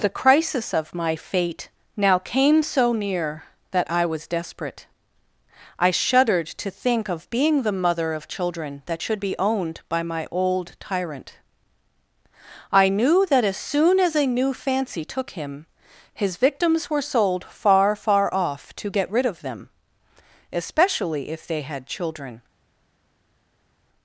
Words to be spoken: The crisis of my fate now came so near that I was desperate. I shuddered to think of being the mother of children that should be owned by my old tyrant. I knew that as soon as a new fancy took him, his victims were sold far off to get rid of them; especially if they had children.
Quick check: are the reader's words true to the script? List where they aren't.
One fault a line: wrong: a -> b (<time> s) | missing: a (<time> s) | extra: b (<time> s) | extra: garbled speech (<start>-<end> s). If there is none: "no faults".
extra: far (18.0 s)